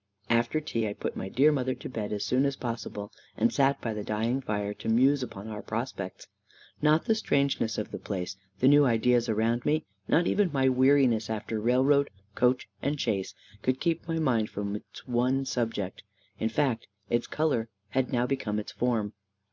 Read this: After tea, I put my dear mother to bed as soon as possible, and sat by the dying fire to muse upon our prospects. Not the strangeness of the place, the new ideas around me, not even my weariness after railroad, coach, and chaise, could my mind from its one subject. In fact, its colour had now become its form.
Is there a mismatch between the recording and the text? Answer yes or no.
yes